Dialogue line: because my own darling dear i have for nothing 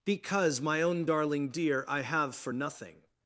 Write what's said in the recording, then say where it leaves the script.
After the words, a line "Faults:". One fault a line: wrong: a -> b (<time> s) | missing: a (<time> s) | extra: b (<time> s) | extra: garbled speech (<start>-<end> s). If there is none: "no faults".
because my own darling dear i have for nothing
Faults:
no faults